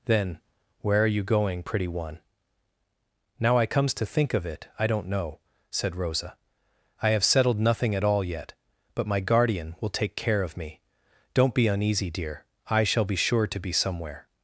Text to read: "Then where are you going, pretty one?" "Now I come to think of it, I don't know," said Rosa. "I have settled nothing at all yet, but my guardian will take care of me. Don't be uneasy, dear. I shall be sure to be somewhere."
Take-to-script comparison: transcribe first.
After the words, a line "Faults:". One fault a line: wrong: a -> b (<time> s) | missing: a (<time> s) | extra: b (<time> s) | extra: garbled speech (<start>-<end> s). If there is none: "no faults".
"Then where are you going, pretty one?" "Now I comes to think of it, I don't know," said Rosa. "I have settled nothing at all yet, but my guardian will take care of me. Don't be uneasy, dear. I shall be sure to be somewhere."
Faults:
wrong: come -> comes (3.6 s)